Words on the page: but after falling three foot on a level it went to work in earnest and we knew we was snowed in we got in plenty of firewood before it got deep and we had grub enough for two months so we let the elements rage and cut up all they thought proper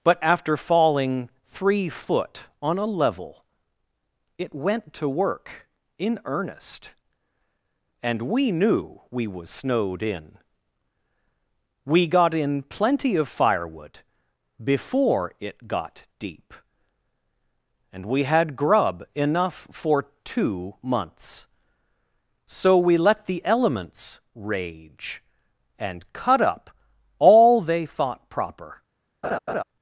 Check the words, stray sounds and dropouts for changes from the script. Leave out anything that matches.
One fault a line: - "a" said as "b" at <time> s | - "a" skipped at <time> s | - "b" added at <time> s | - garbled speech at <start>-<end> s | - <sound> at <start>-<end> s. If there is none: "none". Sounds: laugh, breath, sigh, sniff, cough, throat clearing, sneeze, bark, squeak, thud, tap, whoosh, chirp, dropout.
- laugh at 29.2-29.6 s